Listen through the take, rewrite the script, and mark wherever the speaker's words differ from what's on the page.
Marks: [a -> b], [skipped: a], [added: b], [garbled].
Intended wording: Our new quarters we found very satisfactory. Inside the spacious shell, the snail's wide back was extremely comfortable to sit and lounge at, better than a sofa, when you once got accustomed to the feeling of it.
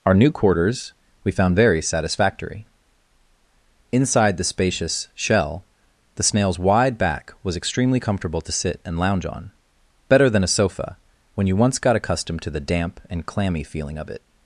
Our new quarters we found very satisfactory. Inside the spacious shell, the snail's wide back was extremely comfortable to sit and lounge [at, -> on] better than a sofa, when you once got accustomed to the [added: damp and clammy] feeling of it.